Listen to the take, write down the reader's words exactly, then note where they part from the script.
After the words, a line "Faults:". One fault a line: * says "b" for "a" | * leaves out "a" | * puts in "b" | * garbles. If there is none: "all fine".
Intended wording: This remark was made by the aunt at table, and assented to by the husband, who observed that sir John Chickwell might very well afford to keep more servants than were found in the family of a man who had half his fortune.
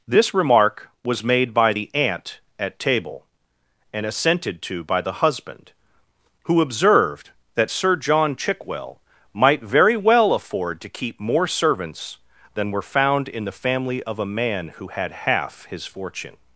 This remark was made by the aunt at table, and assented to by the husband, who observed that sir John Chickwell might very well afford to keep more servants than were found in the family of a man who had half his fortune.
Faults:
all fine